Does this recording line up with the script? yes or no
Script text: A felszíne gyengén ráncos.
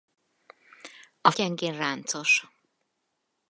no